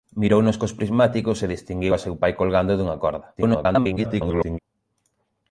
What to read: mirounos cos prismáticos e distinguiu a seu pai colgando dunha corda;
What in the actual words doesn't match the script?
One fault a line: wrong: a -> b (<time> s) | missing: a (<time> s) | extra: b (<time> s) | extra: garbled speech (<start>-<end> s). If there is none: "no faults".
extra: garbled speech (3.4-4.6 s)